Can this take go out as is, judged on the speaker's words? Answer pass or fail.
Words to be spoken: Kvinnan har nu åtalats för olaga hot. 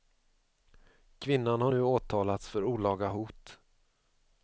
pass